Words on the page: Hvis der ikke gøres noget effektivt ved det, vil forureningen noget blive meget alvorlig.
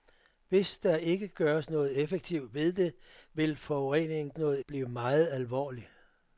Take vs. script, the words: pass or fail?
pass